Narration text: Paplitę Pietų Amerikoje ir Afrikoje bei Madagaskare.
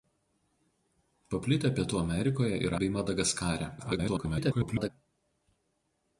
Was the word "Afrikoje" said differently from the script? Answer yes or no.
yes